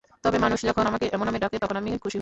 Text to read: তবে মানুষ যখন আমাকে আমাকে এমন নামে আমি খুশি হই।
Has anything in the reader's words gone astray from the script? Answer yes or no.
yes